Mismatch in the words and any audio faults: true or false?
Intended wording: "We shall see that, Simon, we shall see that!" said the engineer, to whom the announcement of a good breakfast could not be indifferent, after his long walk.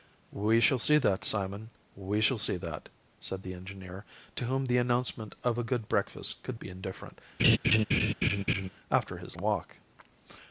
true